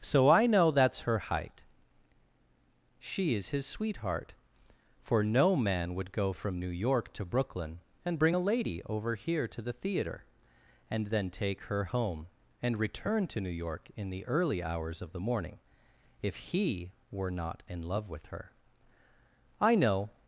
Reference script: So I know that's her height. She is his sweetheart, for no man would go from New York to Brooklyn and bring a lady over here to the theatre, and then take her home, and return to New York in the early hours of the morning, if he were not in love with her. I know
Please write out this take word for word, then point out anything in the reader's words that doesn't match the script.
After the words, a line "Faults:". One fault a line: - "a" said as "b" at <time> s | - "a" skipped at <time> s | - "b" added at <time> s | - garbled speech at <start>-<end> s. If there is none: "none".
So I know that's her height. She is his sweetheart, for no man would go from New York to Brooklyn and bring a lady over here to the theatre, and then take her home, and return to New York in the early hours of the morning, if he were not in love with her. I know
Faults:
none